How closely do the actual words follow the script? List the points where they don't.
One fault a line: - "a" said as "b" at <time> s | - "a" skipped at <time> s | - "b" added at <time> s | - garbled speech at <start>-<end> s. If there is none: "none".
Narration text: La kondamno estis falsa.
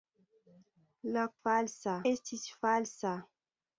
- "kondamno" said as "falsa" at 1.4 s